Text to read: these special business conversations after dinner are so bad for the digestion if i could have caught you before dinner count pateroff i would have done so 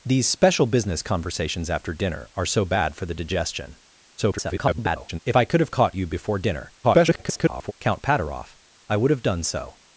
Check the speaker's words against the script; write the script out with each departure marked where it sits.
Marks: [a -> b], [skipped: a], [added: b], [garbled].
these special business conversations after dinner are so bad for the digestion [garbled] if i could have caught you before dinner [garbled] count pateroff i would have done so